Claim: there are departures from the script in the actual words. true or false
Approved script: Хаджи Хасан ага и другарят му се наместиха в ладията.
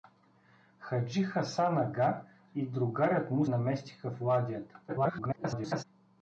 true